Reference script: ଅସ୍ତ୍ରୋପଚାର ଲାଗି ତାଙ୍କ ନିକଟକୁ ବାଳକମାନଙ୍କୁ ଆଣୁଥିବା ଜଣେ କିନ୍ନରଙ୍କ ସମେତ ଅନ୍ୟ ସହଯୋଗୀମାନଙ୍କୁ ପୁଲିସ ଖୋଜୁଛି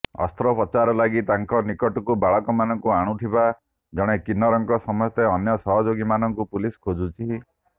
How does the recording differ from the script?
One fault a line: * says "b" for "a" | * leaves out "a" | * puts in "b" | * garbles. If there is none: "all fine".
all fine